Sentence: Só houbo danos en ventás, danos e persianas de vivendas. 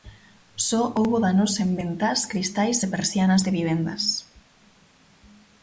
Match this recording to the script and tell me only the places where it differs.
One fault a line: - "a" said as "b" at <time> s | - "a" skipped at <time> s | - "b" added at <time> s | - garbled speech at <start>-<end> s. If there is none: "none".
- "danos" said as "cristais" at 2.3 s